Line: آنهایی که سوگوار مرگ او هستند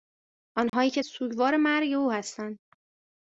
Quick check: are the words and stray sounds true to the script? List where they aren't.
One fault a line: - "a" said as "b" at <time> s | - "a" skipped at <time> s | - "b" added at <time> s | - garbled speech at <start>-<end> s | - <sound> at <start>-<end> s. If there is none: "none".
- dropout at 0.7-0.7 s